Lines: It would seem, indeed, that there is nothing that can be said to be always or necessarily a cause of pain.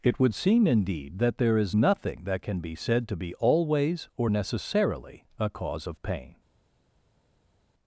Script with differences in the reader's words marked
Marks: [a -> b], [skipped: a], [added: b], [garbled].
It would seem, indeed, that there is nothing that can be said to be always or necessarily a cause of pain.